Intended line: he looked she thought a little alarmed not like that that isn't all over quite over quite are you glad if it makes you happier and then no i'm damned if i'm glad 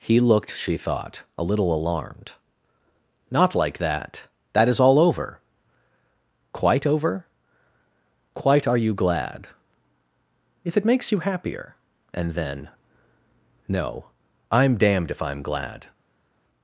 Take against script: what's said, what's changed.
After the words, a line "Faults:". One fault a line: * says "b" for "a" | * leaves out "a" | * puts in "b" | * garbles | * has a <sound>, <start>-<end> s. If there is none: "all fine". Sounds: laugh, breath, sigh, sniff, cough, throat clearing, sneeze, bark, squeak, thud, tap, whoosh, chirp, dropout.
he looked she thought a little alarmed not like that that is all over quite over quite are you glad if it makes you happier and then no i'm damned if i'm glad
Faults:
* says "is" for "isn't"